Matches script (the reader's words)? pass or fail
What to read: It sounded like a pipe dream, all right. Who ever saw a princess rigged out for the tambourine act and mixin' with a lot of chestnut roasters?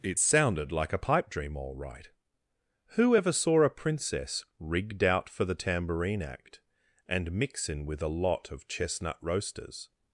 pass